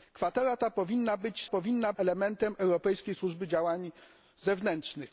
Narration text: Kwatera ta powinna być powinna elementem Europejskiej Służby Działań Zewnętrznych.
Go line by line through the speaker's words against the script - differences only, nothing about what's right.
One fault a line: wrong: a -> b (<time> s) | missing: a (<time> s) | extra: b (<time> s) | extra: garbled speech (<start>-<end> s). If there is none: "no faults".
no faults